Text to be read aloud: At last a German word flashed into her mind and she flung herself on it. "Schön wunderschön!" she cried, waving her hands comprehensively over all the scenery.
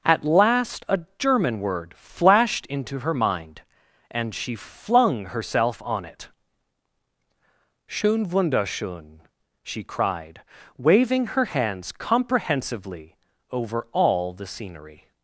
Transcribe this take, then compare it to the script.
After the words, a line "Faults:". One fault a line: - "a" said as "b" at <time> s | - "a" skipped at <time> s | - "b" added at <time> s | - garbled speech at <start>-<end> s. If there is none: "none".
At last a German word flashed into her mind and she flung herself on it. "Schön wunderschön!" she cried, waving her hands comprehensively over all the scenery.
Faults:
none